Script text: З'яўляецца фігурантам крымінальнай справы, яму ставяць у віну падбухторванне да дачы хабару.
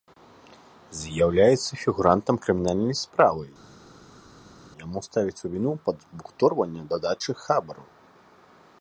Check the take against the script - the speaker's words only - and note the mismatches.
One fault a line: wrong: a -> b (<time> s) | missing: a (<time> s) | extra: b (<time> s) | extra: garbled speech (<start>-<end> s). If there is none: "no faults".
no faults